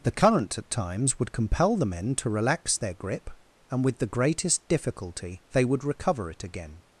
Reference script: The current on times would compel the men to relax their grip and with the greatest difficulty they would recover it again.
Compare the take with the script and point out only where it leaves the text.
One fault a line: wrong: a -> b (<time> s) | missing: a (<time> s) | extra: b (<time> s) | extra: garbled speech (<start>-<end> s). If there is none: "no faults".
wrong: on -> at (0.6 s)